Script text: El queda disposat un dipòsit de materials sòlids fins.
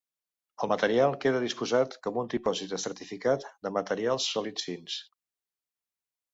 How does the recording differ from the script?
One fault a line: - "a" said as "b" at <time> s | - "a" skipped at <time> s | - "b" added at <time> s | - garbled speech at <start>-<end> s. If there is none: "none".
- "material" added at 0.7 s
- "com" added at 2.1 s
- "estratificat" added at 2.8 s